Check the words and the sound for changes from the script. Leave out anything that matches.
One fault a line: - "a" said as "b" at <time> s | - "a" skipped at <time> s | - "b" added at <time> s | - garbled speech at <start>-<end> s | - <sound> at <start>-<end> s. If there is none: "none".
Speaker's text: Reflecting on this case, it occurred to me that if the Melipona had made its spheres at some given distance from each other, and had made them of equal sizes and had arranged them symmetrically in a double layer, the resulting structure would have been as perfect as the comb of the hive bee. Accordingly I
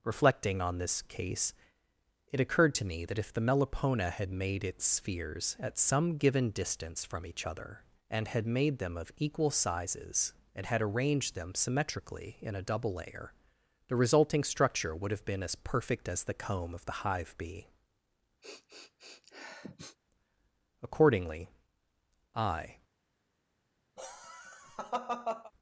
- sniff at 18.4-20.0 s
- laugh at 24.0-25.5 s